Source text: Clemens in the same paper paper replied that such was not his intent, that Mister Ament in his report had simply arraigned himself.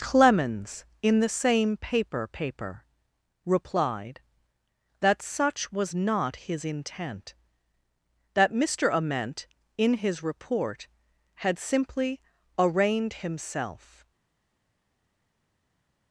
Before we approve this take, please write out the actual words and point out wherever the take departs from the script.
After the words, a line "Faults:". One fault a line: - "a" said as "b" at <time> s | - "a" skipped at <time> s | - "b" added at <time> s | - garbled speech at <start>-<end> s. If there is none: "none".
Clemens in the same paper paper replied that such was not his intent, that Mister Ament in his report had simply arraigned himself.
Faults:
none